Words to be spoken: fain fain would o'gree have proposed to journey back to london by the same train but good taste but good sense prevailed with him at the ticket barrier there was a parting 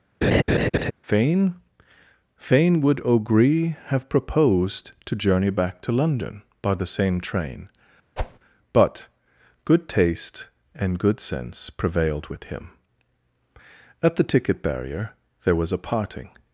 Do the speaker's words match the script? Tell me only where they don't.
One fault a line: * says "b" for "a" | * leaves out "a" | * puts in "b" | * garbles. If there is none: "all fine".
* says "and" for "but"